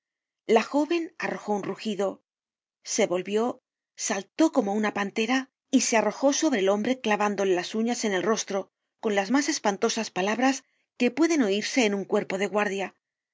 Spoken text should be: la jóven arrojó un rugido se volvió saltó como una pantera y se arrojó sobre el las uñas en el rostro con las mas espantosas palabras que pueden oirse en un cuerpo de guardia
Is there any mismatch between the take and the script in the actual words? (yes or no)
yes